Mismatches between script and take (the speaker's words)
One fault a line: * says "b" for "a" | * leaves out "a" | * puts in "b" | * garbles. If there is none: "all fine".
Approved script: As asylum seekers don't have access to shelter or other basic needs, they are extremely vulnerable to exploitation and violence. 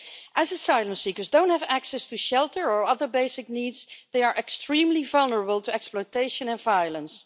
all fine